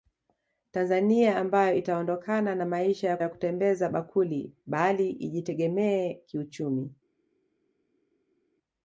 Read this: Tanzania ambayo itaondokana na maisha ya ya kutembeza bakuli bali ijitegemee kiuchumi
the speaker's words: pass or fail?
pass